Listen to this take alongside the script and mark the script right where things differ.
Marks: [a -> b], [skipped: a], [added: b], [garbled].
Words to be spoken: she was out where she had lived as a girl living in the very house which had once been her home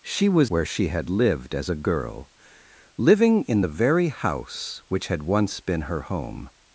she was [skipped: out] where she had lived as a girl living in the very house which had once been her home